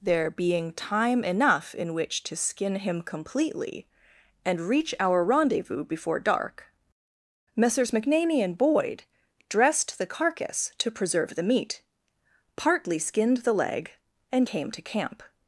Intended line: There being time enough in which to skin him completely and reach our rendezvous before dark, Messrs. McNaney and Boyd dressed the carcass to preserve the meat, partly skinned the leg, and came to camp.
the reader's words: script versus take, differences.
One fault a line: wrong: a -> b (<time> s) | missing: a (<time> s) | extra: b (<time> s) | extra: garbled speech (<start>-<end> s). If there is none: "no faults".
no faults